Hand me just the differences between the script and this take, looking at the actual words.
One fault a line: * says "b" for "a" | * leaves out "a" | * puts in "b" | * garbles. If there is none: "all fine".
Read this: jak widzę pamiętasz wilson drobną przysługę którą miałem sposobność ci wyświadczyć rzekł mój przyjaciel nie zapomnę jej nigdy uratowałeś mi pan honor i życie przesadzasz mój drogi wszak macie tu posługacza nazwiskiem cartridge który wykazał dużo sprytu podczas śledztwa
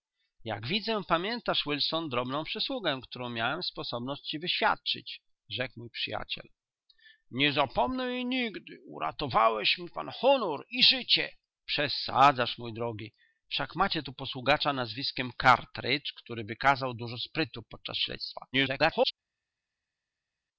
* garbles